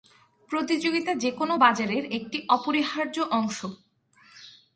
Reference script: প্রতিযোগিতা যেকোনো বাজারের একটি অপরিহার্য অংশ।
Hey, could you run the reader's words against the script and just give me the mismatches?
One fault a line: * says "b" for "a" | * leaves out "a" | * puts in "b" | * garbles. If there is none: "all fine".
all fine